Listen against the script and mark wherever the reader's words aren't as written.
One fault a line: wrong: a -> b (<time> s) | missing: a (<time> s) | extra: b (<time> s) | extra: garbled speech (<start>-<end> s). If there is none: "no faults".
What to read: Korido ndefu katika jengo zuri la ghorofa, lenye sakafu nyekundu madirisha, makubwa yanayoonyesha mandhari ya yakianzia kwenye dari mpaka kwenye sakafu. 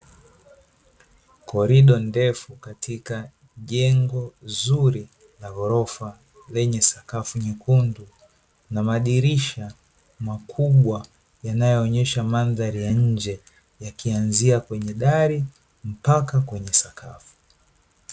extra: na (8.7 s)
extra: nje (12.9 s)